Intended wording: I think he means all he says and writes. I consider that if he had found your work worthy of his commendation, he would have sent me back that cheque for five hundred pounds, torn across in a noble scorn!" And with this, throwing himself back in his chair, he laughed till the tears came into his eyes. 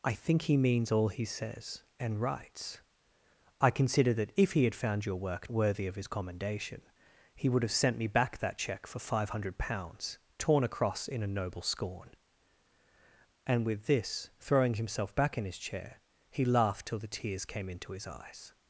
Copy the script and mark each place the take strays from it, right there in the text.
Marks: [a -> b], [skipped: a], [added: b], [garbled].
I think he means all he says and writes. I consider that if he had found your work worthy of his commendation, he would have sent me back that cheque for five hundred pounds, torn across in a noble scorn!" And with this, throwing himself back in his chair, he laughed till the tears came into his eyes.